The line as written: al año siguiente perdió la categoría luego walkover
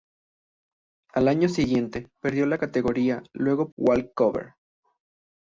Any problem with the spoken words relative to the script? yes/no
no